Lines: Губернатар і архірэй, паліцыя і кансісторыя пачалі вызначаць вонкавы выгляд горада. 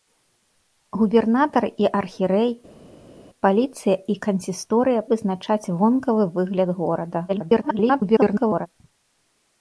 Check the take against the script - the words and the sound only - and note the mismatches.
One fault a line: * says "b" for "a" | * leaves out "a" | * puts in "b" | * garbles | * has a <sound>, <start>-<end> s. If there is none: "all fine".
* leaves out "пачалі"
* garbles